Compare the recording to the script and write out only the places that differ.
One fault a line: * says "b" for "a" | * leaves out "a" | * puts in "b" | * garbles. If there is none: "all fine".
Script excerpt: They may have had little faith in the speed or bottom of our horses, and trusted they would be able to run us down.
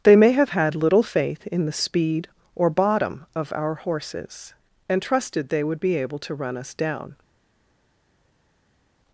all fine